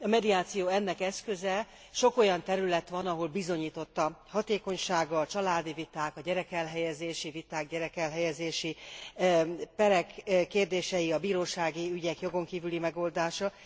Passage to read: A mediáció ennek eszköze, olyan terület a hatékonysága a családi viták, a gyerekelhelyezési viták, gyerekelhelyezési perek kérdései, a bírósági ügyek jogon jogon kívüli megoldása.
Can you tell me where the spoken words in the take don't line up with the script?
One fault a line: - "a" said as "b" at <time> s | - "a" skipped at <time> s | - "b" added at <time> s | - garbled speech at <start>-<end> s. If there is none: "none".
- "sok" added at 1.9 s
- "van ahol bizonyított" added at 2.9 s
- "jogon" skipped at 12.4 s